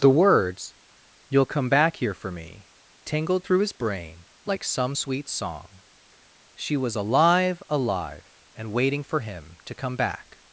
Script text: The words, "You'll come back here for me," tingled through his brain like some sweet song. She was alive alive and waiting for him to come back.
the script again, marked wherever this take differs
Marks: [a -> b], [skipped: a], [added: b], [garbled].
The words, "You'll come back here for me," tingled through his brain like some sweet song. She was alive alive and waiting for him to come back.